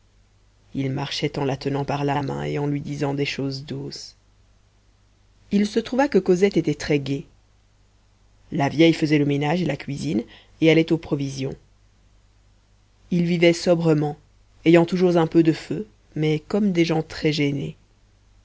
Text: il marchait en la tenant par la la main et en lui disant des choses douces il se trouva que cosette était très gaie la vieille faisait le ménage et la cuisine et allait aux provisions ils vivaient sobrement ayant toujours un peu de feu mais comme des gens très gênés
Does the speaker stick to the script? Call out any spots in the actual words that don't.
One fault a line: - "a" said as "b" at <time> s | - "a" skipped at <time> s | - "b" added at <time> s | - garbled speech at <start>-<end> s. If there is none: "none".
none